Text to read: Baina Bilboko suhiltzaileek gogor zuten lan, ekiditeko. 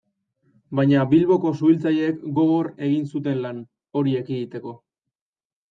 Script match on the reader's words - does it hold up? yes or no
no